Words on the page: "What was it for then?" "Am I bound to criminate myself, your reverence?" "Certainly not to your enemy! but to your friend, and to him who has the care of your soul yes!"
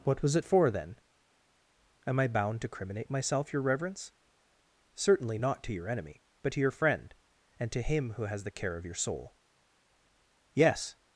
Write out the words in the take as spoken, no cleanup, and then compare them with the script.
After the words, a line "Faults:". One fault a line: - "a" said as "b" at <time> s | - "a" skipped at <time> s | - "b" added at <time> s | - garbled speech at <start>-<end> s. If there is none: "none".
"What was it for then?" "Am I bound to criminate myself, your reverence?" "Certainly not to your enemy! but to your friend, and to him who has the care of your soul yes!"
Faults:
none